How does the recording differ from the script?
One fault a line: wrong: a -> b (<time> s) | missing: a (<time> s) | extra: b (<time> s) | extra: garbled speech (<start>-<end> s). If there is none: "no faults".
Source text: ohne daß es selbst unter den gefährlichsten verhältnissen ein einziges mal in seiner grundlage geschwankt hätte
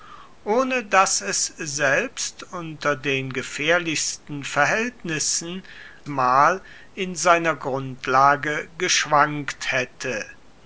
missing: ein einziges (5.6 s)